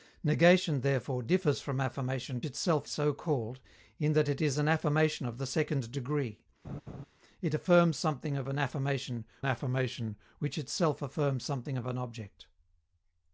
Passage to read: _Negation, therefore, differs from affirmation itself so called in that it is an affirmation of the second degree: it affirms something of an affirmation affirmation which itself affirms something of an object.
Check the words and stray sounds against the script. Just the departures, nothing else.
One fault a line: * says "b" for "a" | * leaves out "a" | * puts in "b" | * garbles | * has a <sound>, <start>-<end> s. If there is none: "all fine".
* has a laugh, 6.6-7.1 s